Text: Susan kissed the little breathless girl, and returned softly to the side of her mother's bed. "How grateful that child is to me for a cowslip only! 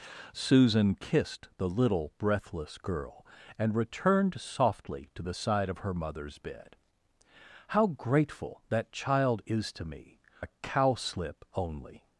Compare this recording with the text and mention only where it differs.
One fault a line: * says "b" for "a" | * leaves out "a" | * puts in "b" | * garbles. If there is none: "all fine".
* leaves out "for"